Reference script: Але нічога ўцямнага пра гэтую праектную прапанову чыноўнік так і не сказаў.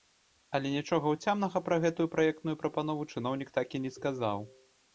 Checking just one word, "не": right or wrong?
right